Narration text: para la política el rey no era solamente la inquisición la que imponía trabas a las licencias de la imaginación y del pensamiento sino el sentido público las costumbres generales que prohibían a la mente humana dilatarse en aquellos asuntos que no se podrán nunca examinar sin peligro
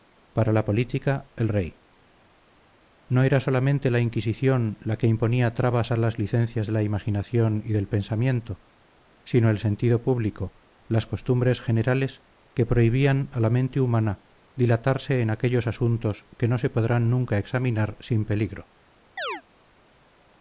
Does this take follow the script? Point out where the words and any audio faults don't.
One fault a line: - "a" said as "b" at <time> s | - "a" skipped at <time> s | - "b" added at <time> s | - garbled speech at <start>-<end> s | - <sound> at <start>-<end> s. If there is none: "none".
- chirp at 19.2-19.4 s